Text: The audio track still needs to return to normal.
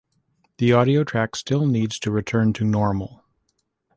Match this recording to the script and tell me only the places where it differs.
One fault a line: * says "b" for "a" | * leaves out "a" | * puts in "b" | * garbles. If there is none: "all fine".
all fine